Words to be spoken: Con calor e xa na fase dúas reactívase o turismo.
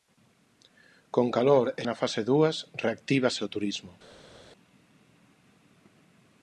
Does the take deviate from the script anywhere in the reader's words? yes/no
yes